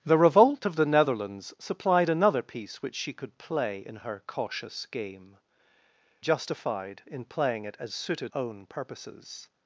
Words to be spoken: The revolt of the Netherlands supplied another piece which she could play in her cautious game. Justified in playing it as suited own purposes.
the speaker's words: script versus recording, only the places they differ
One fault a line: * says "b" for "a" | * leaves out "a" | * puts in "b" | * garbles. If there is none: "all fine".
all fine